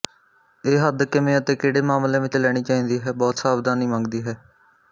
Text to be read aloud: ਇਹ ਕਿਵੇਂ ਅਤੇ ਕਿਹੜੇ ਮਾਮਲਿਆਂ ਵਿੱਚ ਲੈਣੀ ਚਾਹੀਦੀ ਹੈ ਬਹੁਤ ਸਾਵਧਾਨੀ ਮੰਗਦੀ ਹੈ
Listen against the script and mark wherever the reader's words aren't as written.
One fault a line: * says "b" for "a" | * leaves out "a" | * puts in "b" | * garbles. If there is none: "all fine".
* puts in "ਹੱਦ"